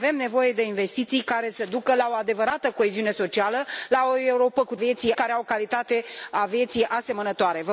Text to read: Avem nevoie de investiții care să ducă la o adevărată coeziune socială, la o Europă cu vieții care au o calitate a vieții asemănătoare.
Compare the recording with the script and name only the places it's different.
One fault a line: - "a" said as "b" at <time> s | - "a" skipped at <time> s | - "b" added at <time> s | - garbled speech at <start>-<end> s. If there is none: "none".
none